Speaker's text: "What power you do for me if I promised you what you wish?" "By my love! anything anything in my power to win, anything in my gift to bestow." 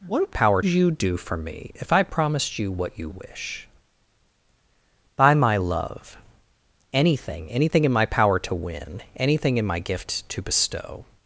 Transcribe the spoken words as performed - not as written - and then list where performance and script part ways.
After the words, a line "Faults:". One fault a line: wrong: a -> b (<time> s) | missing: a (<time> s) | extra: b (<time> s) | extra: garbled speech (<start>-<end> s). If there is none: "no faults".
"What power you do for me if I promised you what you wish?" "By my love! anything anything in my power to win, anything in my gift to bestow."
Faults:
no faults